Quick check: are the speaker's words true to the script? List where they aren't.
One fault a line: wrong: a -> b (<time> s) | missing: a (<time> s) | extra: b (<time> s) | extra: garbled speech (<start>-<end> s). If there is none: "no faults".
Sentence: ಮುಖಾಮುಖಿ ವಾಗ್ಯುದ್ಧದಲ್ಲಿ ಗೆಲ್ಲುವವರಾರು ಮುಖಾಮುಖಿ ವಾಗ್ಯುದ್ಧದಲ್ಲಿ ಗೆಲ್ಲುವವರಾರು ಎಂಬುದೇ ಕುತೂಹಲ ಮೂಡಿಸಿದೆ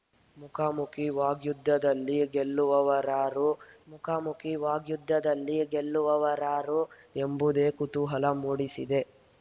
no faults